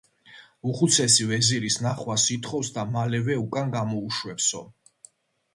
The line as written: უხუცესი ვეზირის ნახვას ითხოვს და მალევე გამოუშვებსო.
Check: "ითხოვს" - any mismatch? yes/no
no